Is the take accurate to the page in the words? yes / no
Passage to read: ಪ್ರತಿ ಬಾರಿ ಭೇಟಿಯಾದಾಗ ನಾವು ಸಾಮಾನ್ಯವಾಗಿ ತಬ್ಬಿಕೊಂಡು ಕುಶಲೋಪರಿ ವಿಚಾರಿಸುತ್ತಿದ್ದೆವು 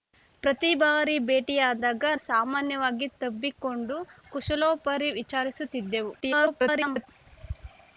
no